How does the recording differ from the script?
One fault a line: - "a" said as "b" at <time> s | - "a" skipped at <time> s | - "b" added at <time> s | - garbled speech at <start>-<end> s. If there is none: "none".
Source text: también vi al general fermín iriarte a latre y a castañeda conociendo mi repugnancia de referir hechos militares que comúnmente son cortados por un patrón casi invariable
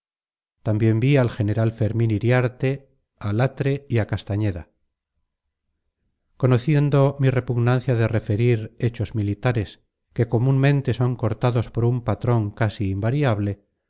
none